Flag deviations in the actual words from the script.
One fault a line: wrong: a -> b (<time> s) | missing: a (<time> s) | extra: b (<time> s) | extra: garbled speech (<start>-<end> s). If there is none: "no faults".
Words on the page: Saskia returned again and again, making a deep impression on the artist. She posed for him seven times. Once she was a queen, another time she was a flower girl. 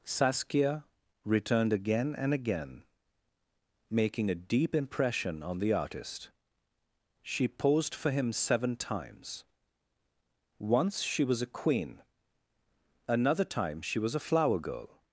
no faults